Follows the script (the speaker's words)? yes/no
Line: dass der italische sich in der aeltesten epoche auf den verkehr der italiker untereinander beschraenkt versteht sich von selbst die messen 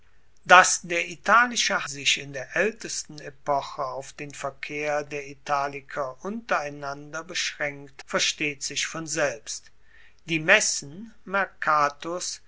yes